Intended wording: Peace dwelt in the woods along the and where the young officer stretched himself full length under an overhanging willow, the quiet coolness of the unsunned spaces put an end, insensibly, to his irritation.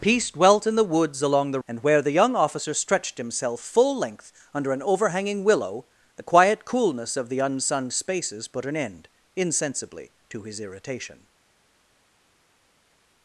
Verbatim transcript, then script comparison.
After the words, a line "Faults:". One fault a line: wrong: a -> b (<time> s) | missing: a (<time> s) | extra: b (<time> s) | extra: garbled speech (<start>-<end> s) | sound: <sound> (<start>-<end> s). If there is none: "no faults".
Peace dwelt in the woods along the and where the young officer stretched himself full length under an overhanging willow, the quiet coolness of the unsunned spaces put an end, insensibly, to his irritation.
Faults:
no faults